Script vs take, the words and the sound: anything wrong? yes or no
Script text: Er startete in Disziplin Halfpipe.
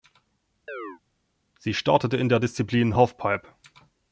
yes